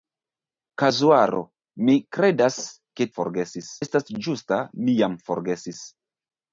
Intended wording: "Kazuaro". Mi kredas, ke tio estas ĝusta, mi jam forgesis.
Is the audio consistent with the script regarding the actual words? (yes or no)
no